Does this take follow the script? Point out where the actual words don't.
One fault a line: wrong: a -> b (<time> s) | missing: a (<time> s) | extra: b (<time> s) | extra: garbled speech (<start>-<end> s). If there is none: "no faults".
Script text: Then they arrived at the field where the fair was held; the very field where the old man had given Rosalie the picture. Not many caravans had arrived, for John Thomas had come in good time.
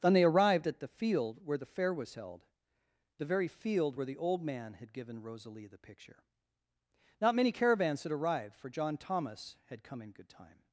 no faults